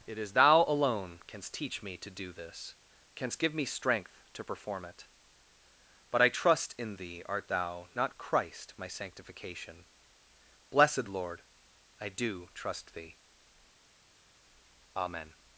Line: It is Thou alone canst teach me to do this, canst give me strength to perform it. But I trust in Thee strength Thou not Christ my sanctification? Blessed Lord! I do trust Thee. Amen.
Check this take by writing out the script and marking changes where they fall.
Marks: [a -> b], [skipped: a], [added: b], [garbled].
It is Thou alone canst teach me to do this, canst give me strength to perform it. But I trust in Thee [strength -> art] Thou not Christ my sanctification? Blessed Lord! I do trust Thee. Amen.